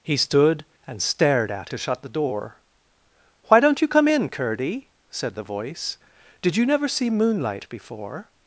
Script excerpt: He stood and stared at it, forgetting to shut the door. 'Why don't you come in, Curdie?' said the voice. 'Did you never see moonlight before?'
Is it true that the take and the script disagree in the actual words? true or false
true